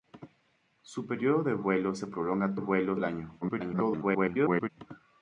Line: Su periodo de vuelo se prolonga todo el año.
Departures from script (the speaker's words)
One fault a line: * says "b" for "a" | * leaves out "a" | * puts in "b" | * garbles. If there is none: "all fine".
* says "vuelo" for "todo"
* garbles